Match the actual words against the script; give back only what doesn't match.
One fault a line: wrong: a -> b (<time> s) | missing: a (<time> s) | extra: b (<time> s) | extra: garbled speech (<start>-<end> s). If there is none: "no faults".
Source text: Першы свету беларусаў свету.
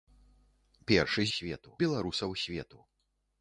no faults